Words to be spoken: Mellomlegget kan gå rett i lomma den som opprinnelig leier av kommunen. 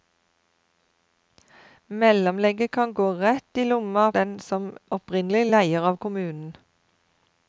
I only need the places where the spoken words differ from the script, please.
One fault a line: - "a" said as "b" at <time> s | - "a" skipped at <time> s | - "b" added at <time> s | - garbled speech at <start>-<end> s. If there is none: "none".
none